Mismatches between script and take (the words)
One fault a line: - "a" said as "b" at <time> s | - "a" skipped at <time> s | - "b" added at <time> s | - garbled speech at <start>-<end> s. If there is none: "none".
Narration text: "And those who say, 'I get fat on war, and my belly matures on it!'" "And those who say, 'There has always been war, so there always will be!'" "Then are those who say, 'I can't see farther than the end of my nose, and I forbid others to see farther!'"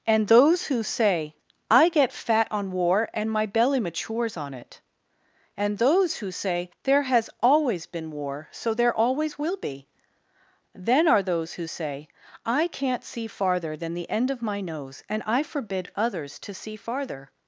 none